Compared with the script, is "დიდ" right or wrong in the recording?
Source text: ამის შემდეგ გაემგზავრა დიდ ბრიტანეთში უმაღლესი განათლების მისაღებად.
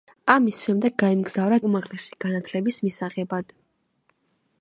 wrong